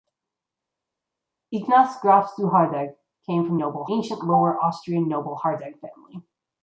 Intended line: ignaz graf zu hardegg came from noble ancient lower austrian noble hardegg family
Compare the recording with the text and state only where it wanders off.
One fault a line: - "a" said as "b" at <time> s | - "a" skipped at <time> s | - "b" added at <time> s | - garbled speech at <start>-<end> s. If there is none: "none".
none